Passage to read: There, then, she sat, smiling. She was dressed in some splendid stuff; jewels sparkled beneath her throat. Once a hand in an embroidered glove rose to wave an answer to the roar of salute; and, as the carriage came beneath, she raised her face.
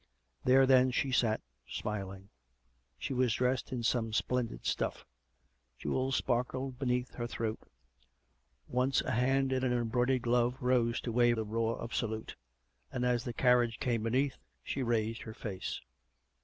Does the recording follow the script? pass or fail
fail